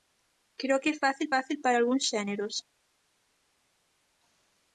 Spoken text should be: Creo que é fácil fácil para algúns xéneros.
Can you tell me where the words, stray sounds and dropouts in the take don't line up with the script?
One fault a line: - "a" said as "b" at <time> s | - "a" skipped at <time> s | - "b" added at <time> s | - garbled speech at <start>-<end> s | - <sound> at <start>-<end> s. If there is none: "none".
none